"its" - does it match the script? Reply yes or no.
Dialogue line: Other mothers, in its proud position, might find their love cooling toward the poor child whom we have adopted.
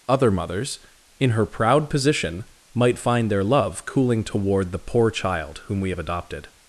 no